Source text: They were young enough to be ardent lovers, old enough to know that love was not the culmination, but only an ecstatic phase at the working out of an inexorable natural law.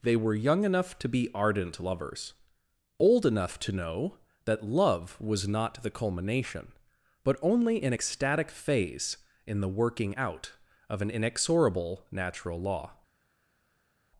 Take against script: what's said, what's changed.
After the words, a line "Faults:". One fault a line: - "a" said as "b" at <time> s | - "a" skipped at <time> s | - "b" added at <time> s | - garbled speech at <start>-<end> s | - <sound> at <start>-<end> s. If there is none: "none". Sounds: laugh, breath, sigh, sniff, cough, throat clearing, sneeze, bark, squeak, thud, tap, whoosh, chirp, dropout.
They were young enough to be ardent lovers, old enough to know that love was not the culmination, but only an ecstatic phase in the working out of an inexorable natural law.
Faults:
- "at" said as "in" at 9.4 s